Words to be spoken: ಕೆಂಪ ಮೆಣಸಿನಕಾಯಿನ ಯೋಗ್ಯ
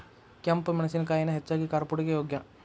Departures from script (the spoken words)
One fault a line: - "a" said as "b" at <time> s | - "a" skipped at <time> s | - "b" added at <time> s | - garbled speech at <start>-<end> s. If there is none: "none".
- "ಹೆಚ್ಚಾಗಿ ಕಾರ್ಪುಡಿಗೆ" added at 1.3 s